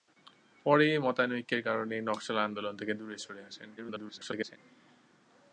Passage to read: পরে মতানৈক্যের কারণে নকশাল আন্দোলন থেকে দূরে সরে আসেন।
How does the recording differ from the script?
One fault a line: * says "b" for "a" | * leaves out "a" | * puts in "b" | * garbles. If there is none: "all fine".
* garbles